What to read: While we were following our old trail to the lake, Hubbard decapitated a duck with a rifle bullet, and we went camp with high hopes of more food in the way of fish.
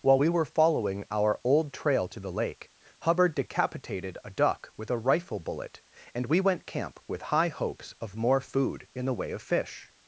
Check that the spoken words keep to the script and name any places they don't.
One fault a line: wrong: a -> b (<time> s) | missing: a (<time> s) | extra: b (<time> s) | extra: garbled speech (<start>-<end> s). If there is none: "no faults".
no faults